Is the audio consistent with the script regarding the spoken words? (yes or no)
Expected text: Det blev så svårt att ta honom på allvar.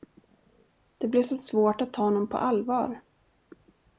yes